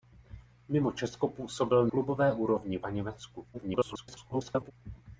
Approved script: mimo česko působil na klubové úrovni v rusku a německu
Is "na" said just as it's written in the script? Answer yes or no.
no